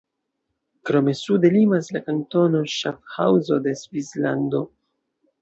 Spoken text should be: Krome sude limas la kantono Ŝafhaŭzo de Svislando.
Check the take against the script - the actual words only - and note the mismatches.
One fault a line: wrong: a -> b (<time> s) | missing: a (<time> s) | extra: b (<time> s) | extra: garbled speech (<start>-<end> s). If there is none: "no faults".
no faults